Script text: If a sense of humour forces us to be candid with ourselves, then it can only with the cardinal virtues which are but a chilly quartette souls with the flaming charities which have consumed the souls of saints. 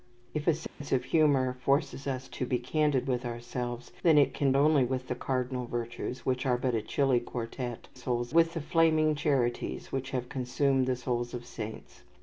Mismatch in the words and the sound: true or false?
true